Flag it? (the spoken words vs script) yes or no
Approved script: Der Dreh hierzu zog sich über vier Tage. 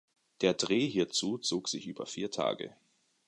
no